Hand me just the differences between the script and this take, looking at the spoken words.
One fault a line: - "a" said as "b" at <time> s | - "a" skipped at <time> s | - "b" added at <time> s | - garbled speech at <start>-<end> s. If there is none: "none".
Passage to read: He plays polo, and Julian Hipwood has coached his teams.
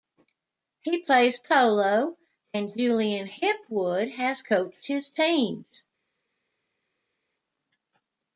none